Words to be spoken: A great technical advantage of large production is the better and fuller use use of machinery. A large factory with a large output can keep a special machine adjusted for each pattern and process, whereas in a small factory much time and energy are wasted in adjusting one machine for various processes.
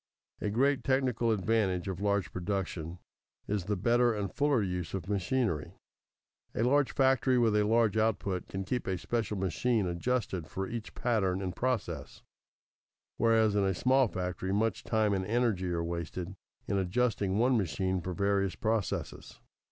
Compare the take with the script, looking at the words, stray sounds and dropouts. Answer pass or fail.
fail